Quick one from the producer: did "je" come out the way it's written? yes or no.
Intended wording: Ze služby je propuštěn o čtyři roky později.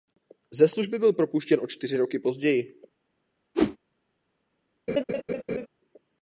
no